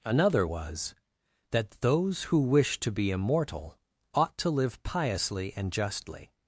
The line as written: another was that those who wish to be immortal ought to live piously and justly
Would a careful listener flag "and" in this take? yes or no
no